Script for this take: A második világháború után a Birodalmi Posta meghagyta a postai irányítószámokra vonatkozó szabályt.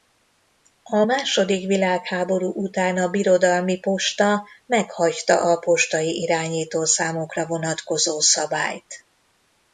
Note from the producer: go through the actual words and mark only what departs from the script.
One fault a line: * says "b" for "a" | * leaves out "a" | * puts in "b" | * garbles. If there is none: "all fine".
all fine